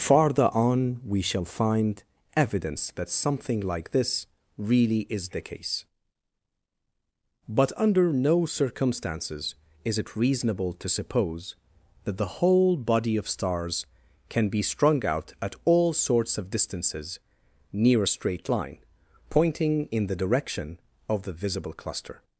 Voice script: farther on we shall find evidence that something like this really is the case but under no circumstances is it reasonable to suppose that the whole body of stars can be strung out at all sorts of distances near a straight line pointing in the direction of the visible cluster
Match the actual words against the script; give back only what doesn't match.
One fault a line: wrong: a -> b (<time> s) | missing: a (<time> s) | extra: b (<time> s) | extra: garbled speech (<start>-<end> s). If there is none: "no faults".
no faults